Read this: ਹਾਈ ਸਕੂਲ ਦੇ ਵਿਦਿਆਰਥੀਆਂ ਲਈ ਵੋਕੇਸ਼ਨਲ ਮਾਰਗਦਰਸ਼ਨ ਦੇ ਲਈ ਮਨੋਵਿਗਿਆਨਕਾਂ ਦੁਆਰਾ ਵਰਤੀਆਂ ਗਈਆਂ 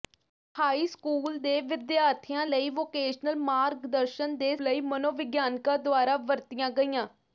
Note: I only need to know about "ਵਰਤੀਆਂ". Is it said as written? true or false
true